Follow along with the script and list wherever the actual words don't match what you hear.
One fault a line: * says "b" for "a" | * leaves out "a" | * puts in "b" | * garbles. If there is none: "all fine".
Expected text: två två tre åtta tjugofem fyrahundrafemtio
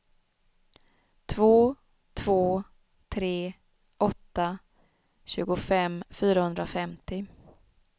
all fine